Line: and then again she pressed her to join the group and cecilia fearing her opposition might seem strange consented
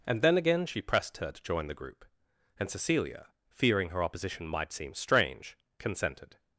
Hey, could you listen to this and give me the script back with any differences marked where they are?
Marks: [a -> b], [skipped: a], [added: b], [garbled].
and then again she pressed her to join the group and cecilia fearing her opposition might seem strange consented